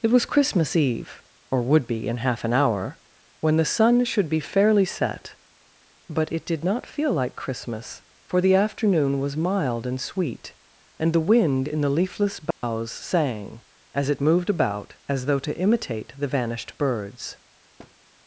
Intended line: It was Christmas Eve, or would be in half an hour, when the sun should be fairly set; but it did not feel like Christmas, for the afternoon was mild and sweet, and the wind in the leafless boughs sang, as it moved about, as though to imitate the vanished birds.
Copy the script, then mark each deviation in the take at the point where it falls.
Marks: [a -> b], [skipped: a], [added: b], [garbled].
It was Christmas Eve, or would be in half an hour, when the sun should be fairly set; but it did not feel like Christmas, for the afternoon was mild and sweet, and the wind in the leafless boughs sang, as it moved about, as though to imitate the vanished birds.